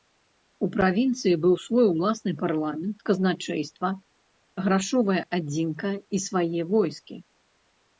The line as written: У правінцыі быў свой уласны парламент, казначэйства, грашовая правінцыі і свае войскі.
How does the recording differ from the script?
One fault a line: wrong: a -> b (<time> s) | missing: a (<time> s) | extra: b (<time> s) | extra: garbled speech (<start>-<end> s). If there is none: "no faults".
wrong: правінцыі -> адзінка (5.4 s)